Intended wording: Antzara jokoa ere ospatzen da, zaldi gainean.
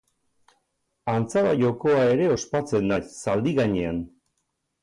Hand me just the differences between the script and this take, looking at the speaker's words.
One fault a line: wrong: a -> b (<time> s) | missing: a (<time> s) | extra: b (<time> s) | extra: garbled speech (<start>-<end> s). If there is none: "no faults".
no faults